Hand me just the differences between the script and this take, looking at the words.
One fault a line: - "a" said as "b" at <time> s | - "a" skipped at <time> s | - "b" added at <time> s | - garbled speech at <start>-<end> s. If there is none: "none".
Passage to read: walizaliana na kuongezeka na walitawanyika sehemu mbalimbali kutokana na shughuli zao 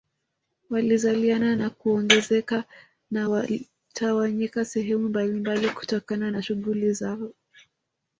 none